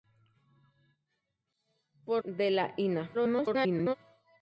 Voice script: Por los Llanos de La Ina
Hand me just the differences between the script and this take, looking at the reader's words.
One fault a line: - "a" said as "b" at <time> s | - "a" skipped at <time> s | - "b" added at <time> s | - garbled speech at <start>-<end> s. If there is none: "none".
- "los Llanos" skipped at 2.2 s
- garbled speech at 3.1-4.0 s